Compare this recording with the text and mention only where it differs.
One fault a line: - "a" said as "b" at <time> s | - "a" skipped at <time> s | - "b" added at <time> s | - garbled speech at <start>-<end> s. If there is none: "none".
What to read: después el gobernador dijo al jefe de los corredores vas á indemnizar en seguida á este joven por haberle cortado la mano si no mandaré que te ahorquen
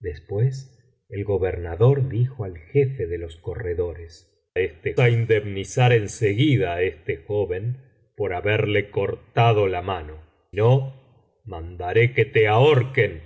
- "vas" said as "este" at 4.6 s
- "si" skipped at 10.2 s